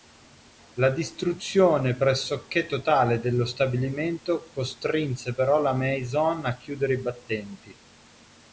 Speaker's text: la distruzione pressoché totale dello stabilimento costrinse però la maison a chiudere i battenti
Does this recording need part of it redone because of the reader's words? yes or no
no